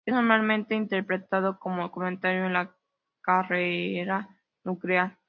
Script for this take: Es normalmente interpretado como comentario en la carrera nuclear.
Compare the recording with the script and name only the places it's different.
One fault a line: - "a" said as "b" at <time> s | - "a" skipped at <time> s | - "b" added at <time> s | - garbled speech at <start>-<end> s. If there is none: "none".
none